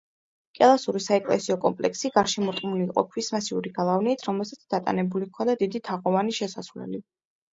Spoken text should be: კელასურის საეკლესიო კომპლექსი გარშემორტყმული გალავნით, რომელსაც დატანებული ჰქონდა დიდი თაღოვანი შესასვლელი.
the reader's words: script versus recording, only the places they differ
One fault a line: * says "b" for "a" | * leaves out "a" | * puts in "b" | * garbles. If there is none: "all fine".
* puts in "იყო ქვის მასიური"